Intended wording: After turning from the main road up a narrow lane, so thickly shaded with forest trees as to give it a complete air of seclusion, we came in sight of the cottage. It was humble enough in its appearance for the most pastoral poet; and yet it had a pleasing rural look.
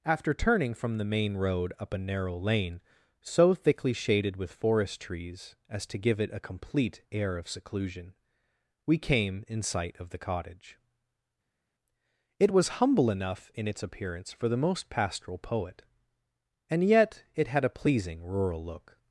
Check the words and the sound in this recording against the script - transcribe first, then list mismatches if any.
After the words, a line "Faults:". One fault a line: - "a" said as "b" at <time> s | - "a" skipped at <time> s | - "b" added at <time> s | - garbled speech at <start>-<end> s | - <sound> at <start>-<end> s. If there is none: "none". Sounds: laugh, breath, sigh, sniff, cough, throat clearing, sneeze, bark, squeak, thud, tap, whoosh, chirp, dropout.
After turning from the main road up a narrow lane, so thickly shaded with forest trees as to give it a complete air of seclusion, we came in sight of the cottage. It was humble enough in its appearance for the most pastoral poet; and yet it had a pleasing rural look.
Faults:
none